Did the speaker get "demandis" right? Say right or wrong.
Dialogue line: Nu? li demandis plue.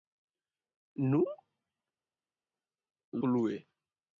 wrong